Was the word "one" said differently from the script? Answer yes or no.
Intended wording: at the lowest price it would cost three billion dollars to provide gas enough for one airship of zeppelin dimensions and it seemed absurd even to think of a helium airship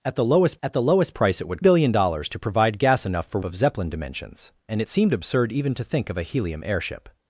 yes